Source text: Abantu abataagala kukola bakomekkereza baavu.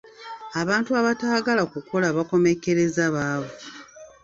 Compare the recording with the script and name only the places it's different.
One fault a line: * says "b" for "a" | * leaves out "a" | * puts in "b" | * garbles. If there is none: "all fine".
all fine